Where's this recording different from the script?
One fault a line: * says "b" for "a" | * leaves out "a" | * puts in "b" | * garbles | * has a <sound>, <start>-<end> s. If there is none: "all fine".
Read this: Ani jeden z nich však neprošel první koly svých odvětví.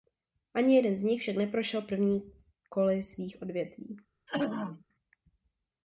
* has a throat clearing, 4.3-4.8 s